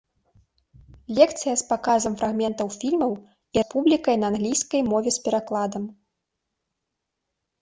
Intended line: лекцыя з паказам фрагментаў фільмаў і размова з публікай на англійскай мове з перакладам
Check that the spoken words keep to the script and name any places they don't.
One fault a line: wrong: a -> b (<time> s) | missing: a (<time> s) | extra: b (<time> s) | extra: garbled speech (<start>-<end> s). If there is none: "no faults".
missing: размова (3.6 s)